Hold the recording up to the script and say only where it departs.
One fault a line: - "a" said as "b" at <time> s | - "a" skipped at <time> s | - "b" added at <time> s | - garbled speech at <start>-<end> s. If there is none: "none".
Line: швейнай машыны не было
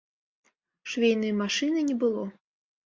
none